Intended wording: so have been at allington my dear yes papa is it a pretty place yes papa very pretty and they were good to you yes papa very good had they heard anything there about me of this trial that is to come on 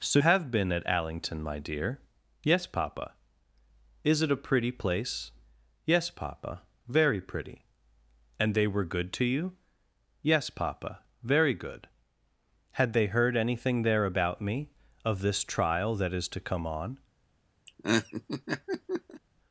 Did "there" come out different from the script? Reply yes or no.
no